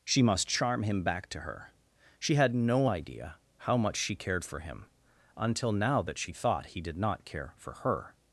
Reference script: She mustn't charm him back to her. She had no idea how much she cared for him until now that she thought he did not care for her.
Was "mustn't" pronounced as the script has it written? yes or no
no